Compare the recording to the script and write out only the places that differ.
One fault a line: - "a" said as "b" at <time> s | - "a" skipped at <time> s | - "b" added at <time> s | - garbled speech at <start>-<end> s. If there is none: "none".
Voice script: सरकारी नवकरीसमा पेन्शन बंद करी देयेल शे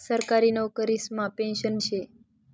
- "बंद करी देयेल" skipped at 1.8 s